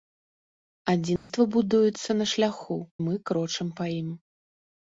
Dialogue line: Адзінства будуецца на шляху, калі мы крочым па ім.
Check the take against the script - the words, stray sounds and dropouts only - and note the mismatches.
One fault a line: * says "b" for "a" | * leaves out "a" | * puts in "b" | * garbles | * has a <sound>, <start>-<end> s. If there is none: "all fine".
* has a dropout, 1.2-1.3 s
* leaves out "калі"